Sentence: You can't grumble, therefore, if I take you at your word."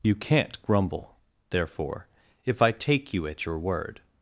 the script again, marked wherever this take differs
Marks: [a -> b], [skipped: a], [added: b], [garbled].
You can't grumble, therefore, if I take you at your word."